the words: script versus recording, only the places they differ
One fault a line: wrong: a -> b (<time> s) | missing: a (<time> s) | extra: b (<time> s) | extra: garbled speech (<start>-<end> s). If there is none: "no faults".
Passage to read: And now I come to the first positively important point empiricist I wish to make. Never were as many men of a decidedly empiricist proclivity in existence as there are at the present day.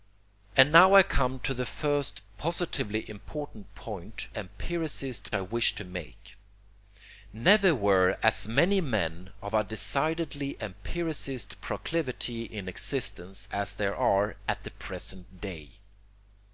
no faults